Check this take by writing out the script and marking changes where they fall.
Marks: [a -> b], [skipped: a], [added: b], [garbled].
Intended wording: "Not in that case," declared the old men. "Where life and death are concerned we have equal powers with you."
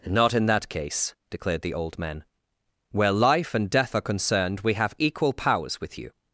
"Not in that case," declared the old men. "Where life and death are concerned we have equal powers with you."